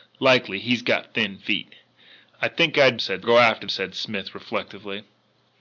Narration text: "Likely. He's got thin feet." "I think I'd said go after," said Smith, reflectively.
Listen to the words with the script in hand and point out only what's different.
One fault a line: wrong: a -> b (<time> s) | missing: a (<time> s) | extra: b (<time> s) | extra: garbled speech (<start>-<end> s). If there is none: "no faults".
no faults